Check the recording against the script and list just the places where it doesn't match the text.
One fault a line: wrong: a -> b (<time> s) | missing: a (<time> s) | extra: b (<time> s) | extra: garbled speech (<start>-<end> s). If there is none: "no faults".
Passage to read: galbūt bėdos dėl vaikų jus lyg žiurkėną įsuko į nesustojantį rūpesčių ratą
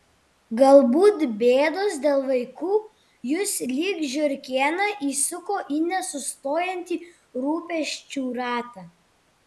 no faults